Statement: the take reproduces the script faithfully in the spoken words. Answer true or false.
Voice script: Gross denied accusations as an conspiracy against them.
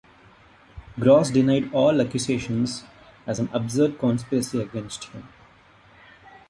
false